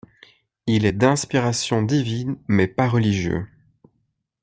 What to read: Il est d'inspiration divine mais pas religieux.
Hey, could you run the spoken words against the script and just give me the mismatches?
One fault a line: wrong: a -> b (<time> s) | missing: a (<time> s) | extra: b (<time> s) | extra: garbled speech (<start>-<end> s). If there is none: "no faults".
no faults